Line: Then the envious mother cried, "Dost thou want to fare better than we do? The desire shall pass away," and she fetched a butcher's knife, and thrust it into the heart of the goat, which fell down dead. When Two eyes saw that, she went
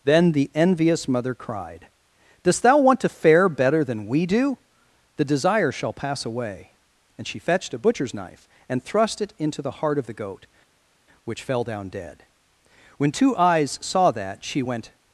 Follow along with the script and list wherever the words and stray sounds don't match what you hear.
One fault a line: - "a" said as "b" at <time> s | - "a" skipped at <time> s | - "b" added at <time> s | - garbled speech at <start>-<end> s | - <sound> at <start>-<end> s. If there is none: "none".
none